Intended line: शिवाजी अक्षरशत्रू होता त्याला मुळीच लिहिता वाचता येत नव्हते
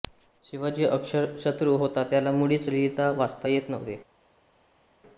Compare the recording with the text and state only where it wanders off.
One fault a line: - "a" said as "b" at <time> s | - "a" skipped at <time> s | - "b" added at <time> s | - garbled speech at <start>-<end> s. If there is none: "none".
none